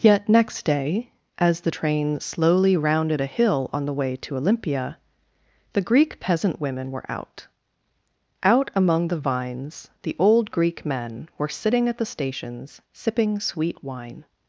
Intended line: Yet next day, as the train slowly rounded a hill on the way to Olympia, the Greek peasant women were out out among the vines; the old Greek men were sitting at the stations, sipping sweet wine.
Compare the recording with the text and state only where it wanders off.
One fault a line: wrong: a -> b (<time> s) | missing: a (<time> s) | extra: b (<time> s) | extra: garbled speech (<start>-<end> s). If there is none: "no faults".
no faults